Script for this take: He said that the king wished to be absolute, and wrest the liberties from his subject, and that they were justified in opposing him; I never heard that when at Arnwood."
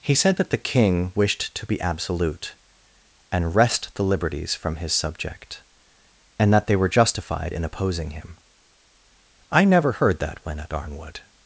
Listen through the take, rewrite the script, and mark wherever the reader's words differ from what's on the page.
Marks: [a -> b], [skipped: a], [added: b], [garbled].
He said that the king wished to be absolute, and wrest the liberties from his subject, and that they were justified in opposing him; I never heard that when at Arnwood."